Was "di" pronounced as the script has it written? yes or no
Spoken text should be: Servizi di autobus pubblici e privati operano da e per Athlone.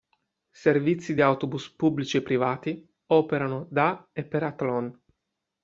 yes